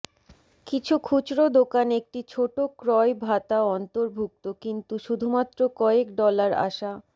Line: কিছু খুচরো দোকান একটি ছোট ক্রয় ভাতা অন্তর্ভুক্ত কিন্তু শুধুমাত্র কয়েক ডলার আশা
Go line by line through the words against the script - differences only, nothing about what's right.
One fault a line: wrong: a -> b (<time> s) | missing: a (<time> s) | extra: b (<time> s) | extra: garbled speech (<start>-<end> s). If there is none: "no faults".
no faults